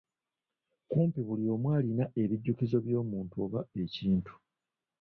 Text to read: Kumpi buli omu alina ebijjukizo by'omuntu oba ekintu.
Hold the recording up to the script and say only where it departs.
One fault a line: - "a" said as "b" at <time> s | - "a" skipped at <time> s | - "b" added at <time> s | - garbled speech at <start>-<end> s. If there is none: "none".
none